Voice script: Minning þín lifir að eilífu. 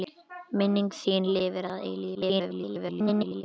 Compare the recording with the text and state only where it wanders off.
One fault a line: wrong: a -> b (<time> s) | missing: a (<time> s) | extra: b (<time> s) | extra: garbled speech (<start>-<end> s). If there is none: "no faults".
extra: garbled speech (2.1-3.4 s)